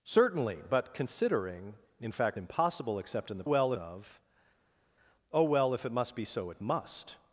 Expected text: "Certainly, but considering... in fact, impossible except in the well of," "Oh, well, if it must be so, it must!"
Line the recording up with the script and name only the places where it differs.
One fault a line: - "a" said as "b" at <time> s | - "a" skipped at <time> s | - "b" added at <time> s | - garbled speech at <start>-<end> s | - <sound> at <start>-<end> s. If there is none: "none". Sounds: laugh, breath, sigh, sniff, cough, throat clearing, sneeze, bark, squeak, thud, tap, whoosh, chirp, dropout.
none